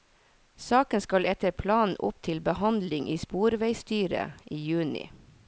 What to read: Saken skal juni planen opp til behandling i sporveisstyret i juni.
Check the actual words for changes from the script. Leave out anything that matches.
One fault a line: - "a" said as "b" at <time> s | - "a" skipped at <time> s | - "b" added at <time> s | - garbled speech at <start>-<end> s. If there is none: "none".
- "juni" said as "etter" at 1.3 s